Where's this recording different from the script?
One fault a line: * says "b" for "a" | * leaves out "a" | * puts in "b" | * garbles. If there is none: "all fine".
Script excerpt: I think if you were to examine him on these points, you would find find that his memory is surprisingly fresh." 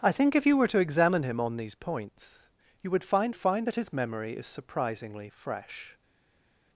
all fine